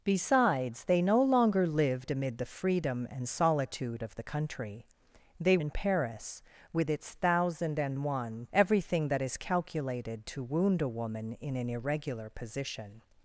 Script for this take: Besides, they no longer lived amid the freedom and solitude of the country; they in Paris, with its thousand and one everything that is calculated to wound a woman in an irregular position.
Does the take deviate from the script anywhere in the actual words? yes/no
no